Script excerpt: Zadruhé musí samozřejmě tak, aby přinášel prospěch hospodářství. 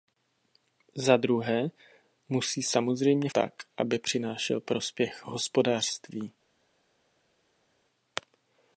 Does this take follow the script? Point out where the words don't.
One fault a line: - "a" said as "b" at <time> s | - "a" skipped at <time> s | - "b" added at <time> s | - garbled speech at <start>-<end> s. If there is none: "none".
none